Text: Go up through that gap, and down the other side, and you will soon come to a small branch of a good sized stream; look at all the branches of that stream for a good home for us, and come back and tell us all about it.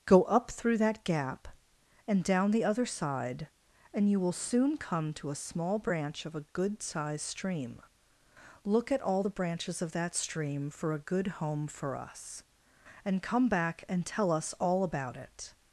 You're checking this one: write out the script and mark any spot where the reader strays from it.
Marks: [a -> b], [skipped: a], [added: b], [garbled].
Go up through that gap, and down the other side, and you will soon come to a small branch of a good sized stream; look at all the branches of that stream for a good home for us, and come back and tell us all about it.